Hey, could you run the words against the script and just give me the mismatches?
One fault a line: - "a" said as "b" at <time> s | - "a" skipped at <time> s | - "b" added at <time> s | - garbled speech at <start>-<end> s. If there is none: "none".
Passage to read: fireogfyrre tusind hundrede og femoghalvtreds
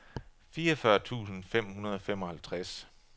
- "fem" added at 1.4 s